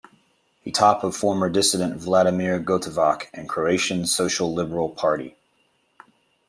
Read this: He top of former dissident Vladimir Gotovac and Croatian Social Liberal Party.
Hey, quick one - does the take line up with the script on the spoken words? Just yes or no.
yes